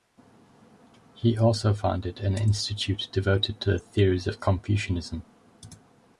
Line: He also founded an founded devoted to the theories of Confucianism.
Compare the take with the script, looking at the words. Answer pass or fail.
fail